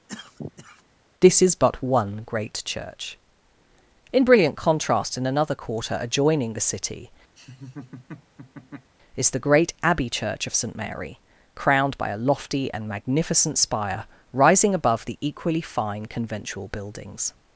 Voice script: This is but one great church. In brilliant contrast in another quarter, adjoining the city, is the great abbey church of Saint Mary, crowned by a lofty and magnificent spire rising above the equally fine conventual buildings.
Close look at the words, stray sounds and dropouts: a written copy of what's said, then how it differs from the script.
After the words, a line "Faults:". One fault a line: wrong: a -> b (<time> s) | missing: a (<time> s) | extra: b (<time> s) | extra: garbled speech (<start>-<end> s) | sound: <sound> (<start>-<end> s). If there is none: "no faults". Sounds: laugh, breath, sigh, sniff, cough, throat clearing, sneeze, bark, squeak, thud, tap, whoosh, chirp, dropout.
This is but one great church. In brilliant contrast in another quarter, adjoining the city, is the great abbey church of Saint Mary, crowned by a lofty and magnificent spire rising above the equally fine conventual buildings.
Faults:
sound: cough (0.1-0.8 s)
sound: laugh (7.4-8.9 s)